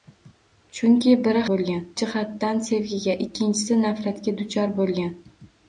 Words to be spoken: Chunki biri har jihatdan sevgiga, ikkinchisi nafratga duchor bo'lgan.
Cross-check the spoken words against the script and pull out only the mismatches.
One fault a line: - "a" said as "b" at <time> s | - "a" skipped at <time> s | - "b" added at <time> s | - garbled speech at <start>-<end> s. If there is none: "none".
- "har" said as "bo'lgan" at 1.5 s